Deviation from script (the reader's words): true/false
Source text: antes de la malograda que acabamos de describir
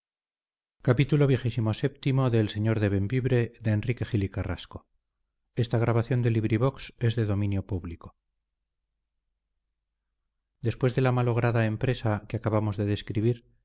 true